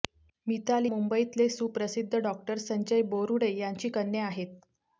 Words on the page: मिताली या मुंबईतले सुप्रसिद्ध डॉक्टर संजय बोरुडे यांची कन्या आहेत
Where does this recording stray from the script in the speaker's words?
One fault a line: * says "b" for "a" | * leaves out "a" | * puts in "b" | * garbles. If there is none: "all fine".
* leaves out "या"